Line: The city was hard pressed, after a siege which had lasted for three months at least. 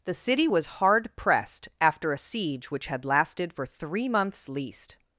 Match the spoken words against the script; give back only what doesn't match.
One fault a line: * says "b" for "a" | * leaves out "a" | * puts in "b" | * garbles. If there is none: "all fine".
* leaves out "at"